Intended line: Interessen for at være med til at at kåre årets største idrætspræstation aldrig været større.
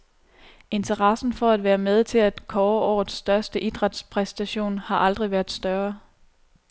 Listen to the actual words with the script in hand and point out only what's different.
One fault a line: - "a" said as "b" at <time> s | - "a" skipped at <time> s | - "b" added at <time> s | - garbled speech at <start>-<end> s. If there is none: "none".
- "at" skipped at 2.5 s
- "har" added at 4.8 s